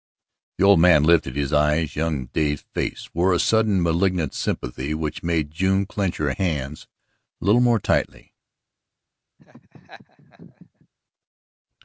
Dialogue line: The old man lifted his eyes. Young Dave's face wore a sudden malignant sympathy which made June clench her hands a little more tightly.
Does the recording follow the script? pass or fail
pass